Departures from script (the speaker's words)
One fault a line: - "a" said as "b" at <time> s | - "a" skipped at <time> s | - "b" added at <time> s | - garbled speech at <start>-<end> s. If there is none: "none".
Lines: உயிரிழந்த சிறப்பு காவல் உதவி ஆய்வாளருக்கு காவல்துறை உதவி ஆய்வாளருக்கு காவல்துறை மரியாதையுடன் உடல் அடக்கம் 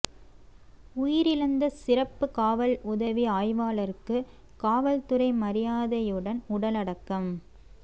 - "உதவி ஆய்வாளருக்கு காவல்துறை" skipped at 5.3 s